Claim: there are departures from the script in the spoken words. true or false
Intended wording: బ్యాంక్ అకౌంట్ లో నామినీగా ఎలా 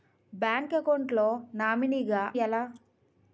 false